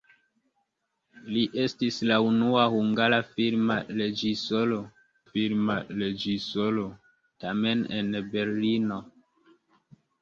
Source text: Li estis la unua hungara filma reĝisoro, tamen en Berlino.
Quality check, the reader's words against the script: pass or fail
fail